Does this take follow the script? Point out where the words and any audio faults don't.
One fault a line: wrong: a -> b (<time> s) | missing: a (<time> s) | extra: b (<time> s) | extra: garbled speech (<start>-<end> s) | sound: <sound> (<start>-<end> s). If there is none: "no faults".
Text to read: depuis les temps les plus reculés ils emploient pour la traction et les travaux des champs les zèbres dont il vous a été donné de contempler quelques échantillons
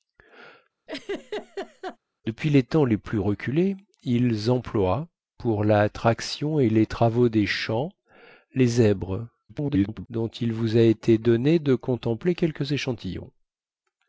sound: laugh (0.9-2.0 s)
extra: garbled speech (9.5-10.1 s)